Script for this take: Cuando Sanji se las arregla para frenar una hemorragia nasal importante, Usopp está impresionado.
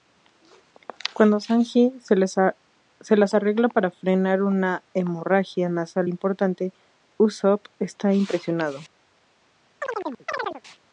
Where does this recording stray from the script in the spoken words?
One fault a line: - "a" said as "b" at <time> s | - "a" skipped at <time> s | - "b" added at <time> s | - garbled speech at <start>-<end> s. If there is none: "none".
none